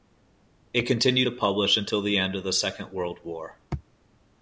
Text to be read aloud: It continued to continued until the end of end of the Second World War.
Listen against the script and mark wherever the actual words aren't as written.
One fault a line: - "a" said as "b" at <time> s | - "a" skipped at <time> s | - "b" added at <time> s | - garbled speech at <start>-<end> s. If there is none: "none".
- "continued" said as "publish" at 1.3 s
- "end of" skipped at 2.4 s